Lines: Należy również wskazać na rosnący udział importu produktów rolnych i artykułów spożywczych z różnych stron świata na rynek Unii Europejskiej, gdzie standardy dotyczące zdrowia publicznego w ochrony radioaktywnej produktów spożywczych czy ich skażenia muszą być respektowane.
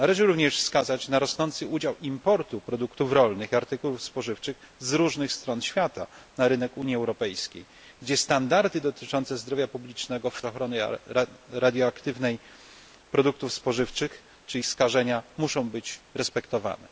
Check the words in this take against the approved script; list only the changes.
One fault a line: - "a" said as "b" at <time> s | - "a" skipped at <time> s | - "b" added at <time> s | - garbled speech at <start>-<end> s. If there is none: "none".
none